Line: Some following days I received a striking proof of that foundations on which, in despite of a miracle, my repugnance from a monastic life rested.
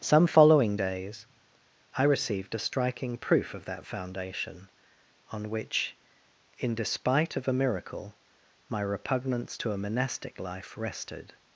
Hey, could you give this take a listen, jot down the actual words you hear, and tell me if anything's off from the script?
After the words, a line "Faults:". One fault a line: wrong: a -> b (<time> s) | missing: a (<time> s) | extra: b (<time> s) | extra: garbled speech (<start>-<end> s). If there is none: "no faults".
Some following days I received a striking proof of that foundation on which, in despite of a miracle, my repugnance to a monastic life rested.
Faults:
wrong: foundations -> foundation (3.9 s)
wrong: from -> to (9.5 s)